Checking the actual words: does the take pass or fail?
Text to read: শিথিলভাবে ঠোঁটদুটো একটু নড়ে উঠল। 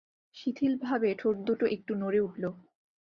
pass